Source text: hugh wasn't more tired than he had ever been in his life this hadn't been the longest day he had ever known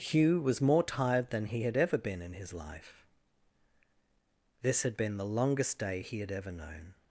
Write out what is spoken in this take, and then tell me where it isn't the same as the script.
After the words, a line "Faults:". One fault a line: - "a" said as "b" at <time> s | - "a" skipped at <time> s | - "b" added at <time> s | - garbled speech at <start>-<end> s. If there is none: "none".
hugh was more tired than he had ever been in his life this had been the longest day he had ever known
Faults:
- "wasn't" said as "was" at 0.4 s
- "hadn't" said as "had" at 4.8 s